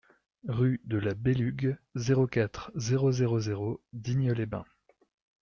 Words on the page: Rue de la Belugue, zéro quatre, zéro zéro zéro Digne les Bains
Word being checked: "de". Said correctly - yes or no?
yes